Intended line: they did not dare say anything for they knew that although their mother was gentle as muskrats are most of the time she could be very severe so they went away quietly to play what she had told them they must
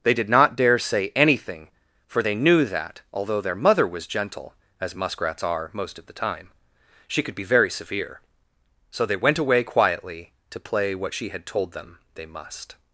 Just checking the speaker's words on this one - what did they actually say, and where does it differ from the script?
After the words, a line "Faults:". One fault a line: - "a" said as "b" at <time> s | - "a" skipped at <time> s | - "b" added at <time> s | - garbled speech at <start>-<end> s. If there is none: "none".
they did not dare say anything for they knew that although their mother was gentle as muskrats are most of the time she could be very severe so they went away quietly to play what she had told them they must
Faults:
none